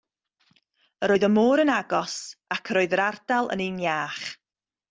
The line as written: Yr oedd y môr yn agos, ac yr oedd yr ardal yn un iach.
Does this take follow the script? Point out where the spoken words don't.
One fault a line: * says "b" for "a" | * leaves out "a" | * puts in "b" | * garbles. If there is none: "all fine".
all fine